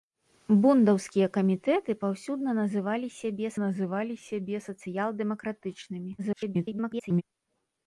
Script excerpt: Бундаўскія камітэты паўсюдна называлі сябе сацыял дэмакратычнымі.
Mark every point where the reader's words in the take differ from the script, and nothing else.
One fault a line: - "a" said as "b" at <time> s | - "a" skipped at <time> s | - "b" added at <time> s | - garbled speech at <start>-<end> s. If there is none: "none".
- "называлі сябе" added at 3.7 s
- garbled speech at 6.2-7.2 s